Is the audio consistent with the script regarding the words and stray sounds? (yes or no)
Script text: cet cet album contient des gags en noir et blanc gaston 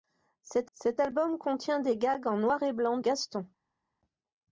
yes